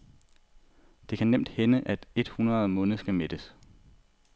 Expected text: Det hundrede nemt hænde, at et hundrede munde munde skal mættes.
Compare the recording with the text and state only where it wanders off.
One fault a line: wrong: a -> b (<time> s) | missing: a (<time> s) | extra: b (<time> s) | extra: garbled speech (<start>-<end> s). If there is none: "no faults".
wrong: hundrede -> kan (1.2 s)
missing: munde (3.0 s)